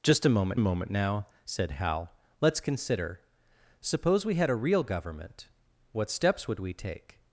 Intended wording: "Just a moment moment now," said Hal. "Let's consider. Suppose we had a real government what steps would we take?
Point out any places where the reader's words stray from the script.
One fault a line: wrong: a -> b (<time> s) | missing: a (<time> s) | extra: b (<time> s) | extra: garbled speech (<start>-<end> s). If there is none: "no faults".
no faults